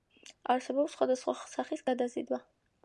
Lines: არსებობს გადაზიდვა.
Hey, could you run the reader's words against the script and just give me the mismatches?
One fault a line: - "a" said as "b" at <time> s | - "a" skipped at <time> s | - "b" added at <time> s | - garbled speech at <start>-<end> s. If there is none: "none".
- "სხვადასხვა სახის" added at 1.0 s